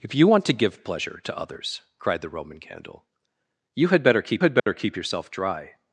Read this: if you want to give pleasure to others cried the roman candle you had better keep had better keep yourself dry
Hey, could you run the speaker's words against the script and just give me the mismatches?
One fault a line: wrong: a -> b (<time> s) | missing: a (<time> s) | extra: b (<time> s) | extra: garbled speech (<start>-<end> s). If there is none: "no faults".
no faults